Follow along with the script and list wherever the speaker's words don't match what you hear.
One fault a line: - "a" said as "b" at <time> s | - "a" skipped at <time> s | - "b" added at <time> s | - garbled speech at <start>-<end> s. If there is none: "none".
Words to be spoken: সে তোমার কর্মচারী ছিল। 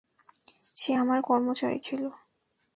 - "তোমার" said as "আমার" at 0.9 s